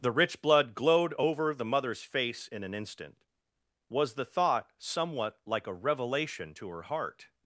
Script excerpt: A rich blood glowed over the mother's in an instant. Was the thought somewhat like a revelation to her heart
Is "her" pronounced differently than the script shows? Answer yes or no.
no